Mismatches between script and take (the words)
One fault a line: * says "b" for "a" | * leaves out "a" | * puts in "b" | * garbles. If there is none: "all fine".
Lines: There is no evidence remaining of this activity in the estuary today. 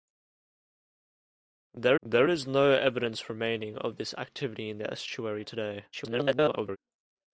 * puts in "there"
* garbles